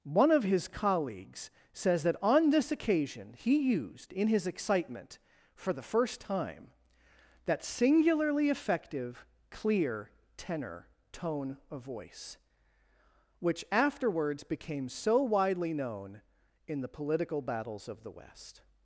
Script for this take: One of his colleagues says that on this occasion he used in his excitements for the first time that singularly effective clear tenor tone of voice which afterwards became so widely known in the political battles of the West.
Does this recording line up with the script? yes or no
no